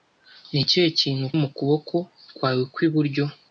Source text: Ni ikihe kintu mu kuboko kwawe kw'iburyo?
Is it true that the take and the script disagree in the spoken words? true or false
false